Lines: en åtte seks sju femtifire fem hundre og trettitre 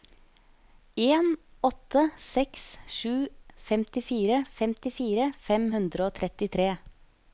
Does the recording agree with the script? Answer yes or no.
no